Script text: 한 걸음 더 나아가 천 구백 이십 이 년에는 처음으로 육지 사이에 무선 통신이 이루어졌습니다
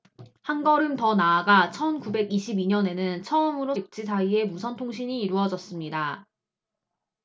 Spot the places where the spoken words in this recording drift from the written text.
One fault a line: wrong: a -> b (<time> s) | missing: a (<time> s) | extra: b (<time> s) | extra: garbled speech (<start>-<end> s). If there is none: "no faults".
no faults